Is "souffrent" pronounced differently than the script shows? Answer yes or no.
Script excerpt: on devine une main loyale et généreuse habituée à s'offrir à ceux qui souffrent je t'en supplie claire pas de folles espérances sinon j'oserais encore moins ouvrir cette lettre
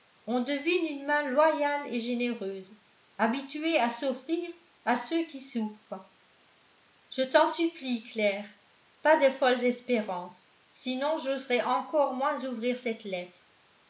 no